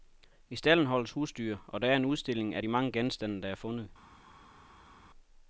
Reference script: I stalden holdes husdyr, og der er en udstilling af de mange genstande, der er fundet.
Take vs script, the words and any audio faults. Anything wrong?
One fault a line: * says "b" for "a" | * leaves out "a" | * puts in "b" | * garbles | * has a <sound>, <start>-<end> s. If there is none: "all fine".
all fine